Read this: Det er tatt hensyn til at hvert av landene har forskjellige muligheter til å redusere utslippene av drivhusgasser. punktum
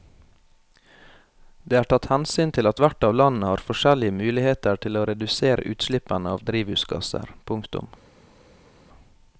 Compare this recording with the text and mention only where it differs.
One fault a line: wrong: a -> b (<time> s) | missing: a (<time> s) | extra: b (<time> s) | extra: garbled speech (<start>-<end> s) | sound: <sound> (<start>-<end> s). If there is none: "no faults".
no faults